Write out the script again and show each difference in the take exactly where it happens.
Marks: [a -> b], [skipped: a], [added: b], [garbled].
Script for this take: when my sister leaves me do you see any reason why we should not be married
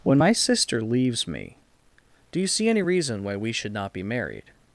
when my sister leaves me do you see any reason why we should not be married